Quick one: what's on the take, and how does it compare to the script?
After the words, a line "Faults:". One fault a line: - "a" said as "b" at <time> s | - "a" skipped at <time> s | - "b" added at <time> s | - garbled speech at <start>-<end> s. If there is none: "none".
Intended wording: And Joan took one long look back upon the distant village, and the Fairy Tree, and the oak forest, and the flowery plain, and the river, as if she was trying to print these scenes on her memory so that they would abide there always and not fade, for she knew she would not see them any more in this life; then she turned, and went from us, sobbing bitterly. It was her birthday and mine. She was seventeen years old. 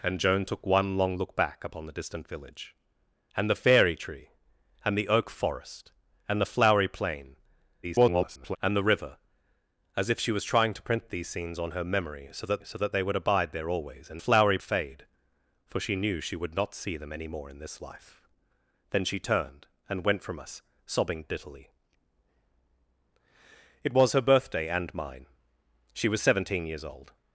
And Joan took one long look back upon the distant village, and the Fairy Tree, and the oak forest, and the flowery plain, [garbled] and the river, as if she was trying to print these scenes on her memory so that so that they would abide there always and flowery fade, for she knew she would not see them any more in this life; then she turned, and went from us, sobbing bitterly. It was her birthday and mine. She was seventeen years old.
Faults:
- garbled speech at 7.8-8.6 s
- "so that" added at 12.6 s
- "not" said as "flowery" at 14.2 s